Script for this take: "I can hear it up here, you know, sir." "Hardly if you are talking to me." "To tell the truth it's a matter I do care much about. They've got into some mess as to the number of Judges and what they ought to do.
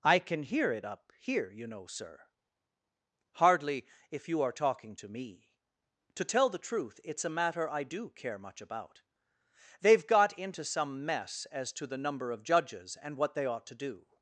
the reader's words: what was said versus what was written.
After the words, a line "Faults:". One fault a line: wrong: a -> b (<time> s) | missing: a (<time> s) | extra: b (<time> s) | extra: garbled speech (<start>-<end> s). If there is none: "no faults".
"I can hear it up here, you know, sir." "Hardly if you are talking to me." "To tell the truth it's a matter I do care much about. They've got into some mess as to the number of Judges and what they ought to do.
Faults:
no faults